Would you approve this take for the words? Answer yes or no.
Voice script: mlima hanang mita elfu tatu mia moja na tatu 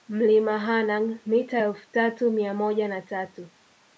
yes